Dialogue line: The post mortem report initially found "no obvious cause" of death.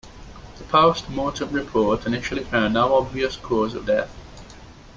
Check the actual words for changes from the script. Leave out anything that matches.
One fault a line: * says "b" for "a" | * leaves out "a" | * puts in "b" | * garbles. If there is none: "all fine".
all fine